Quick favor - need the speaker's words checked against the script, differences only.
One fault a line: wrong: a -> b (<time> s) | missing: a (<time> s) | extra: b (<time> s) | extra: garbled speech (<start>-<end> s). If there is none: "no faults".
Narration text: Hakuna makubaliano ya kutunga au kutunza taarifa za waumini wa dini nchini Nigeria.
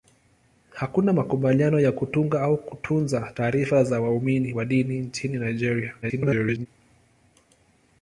extra: garbled speech (6.0-6.7 s)